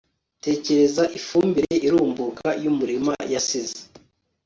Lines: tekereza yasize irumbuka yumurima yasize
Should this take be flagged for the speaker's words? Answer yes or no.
yes